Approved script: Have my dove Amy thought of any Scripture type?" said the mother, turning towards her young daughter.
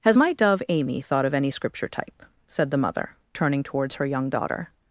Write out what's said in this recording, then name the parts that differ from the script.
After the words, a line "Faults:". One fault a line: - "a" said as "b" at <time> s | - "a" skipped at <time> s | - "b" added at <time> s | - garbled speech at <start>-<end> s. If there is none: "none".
Has my dove Amy thought of any Scripture type?" said the mother, turning towards her young daughter.
Faults:
- "Have" said as "Has" at 0.0 s